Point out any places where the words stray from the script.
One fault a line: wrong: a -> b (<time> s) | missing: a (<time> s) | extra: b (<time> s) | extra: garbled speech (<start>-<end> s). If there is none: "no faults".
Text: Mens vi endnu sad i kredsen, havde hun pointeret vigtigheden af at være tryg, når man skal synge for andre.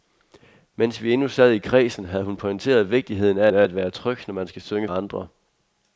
extra: af (3.5 s)
missing: for (4.9 s)